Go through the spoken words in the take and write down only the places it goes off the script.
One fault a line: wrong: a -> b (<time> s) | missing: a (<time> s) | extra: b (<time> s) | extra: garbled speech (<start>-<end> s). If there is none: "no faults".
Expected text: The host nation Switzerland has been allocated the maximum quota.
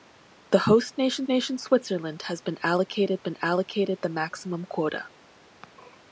extra: nation (1.3 s)
extra: been allocated (3.2 s)